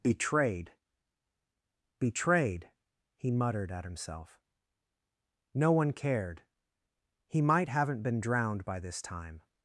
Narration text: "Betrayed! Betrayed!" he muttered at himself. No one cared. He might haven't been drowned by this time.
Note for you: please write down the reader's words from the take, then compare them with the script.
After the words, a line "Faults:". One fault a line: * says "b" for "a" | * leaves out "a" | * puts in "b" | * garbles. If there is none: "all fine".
"Betrayed! Betrayed!" he muttered at himself. No one cared. He might haven't been drowned by this time.
Faults:
all fine